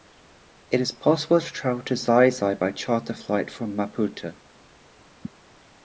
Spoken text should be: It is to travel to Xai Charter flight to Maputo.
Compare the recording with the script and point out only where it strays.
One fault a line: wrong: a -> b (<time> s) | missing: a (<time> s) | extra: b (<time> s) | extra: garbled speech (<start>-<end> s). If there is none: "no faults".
extra: possible (0.9 s)
extra: Xai by (2.3 s)
wrong: to -> from (3.5 s)